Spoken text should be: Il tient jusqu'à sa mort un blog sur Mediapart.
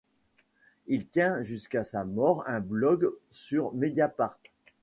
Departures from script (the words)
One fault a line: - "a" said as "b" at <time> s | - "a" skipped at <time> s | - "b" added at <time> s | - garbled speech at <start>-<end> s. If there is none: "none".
none